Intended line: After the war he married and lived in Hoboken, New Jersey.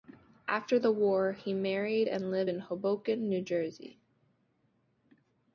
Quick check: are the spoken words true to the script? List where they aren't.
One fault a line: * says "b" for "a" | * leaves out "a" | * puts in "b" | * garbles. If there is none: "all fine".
all fine